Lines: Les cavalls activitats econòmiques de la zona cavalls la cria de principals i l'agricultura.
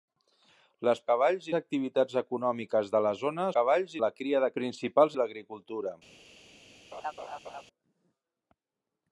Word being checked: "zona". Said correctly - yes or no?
yes